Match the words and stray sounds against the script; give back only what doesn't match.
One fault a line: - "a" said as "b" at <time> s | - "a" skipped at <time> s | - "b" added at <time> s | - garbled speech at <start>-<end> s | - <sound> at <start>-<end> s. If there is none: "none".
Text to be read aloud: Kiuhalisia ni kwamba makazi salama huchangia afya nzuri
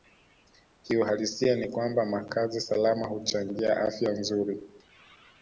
none